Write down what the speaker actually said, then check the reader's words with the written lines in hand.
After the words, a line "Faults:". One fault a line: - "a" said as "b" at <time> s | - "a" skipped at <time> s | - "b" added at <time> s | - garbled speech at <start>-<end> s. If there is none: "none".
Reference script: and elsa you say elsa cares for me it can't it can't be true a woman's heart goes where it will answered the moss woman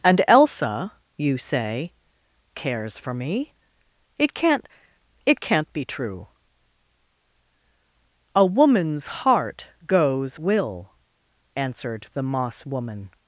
and elsa you say cares for me it can't it can't be true a woman's heart goes will answered the moss woman
Faults:
- "elsa" skipped at 1.9 s
- "where it" skipped at 10.4 s